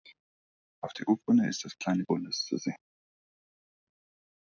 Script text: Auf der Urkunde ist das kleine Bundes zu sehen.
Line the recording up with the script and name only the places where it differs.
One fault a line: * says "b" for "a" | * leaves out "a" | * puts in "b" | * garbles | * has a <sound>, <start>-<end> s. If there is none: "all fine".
all fine